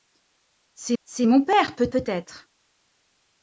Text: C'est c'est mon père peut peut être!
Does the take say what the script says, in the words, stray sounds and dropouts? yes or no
yes